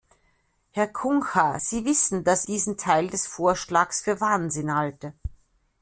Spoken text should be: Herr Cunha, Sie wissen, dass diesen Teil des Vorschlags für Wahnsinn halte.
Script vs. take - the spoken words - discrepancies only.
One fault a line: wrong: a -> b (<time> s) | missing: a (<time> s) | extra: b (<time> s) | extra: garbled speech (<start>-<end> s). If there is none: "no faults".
no faults